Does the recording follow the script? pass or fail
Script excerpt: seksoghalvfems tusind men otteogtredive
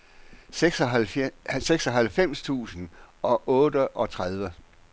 fail